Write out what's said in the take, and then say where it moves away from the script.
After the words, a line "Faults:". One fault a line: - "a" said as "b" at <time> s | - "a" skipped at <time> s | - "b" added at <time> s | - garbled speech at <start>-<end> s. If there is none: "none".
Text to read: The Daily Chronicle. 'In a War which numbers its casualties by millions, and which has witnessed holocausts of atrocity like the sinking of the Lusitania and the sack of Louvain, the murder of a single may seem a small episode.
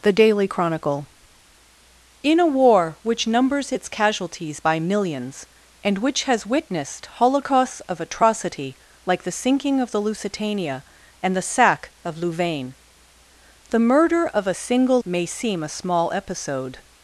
The Daily Chronicle. 'In a War which numbers its casualties by millions, and which has witnessed holocausts of atrocity like the sinking of the Lusitania and the sack of Louvain, the murder of a single may seem a small episode.
Faults:
none